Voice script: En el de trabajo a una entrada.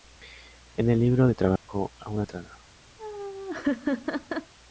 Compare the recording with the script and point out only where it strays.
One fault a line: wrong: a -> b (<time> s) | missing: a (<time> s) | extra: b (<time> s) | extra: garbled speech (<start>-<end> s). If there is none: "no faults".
extra: libro (1.0 s)